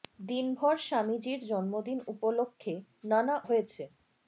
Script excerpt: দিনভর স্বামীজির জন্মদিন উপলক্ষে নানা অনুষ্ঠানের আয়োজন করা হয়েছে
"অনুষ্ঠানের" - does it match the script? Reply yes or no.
no